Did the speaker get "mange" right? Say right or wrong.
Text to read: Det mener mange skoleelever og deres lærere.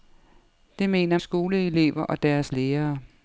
wrong